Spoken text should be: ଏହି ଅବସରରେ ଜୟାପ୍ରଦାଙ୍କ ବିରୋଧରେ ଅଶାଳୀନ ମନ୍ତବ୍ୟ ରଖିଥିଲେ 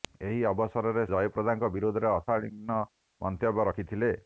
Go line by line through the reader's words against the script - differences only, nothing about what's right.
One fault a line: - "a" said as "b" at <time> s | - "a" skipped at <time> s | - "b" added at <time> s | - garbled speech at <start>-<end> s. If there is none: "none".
none